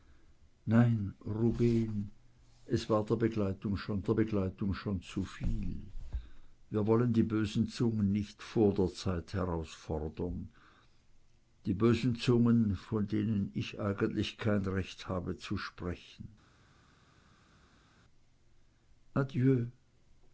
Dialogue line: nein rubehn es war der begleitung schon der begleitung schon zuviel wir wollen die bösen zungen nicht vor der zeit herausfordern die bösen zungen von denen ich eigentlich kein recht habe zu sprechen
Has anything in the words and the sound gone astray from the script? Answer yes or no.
no